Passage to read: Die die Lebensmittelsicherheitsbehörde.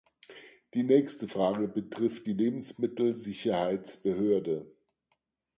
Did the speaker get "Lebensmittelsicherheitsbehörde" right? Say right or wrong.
right